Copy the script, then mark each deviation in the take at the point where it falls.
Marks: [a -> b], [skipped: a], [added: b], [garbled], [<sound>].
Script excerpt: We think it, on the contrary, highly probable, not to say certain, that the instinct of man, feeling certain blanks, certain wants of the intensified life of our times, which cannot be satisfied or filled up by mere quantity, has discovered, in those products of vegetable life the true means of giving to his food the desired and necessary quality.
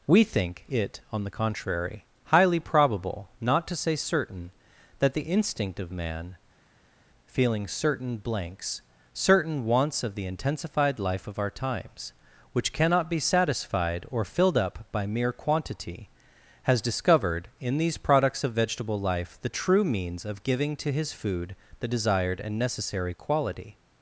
We think it, on the contrary, highly probable, not to say certain, that the instinct of man, feeling certain blanks, certain wants of the intensified life of our times, which cannot be satisfied or filled up by mere quantity, has discovered, in [those -> these] products of vegetable life the true means of giving to his food the desired and necessary quality.